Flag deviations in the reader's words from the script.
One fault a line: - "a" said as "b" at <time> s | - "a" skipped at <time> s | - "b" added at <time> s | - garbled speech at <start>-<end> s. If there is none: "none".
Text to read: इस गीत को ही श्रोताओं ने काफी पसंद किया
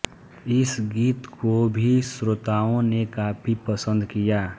- "ही" said as "भी" at 1.7 s